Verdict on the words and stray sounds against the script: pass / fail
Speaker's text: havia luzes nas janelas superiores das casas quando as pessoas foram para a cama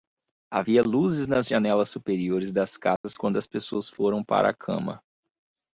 fail